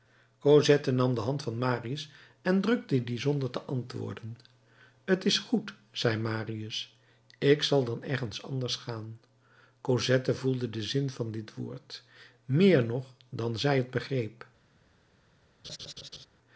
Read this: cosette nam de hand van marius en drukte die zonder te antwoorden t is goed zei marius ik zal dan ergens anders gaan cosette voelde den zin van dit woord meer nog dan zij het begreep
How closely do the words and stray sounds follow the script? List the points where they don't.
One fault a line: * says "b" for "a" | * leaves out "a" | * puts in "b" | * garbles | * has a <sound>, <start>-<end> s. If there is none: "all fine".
* has a laugh, 15.6-16.3 s